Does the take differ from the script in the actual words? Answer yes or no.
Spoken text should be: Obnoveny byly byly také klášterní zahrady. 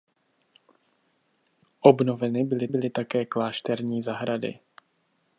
no